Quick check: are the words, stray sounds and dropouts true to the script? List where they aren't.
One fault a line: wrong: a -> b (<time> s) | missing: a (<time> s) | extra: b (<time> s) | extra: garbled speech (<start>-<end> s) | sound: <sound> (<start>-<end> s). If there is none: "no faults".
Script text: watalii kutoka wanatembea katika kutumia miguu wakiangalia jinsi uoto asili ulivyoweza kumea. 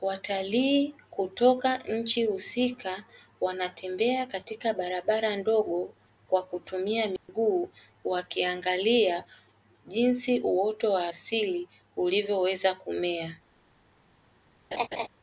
extra: nchi husika (1.8 s)
extra: barabara ndogo kwa (4.7 s)
sound: dropout (7.2-7.3 s)
extra: wa (10.9 s)
sound: laugh (14.7-15.1 s)